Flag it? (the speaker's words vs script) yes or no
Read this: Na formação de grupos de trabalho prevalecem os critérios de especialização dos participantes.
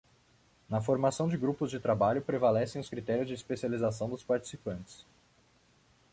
no